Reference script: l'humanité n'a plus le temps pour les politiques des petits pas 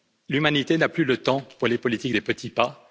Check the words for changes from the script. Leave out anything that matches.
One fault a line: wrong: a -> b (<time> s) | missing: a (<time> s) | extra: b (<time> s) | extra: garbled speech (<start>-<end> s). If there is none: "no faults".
no faults